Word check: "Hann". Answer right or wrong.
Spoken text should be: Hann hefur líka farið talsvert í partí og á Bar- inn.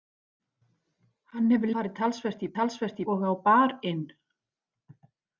right